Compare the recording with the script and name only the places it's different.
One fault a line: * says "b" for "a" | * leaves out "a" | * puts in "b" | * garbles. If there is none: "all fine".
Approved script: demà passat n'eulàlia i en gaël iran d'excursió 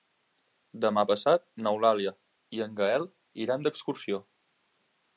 all fine